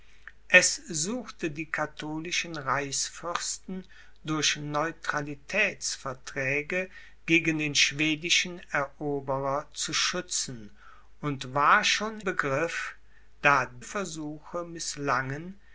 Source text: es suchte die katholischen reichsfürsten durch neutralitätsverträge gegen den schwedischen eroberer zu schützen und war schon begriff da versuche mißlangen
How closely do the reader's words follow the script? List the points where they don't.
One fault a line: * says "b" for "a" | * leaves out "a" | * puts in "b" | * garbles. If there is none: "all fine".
all fine